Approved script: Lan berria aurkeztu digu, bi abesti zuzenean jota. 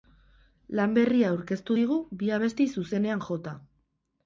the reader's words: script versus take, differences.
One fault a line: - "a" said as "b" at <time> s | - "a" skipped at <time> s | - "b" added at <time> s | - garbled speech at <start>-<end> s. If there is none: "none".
none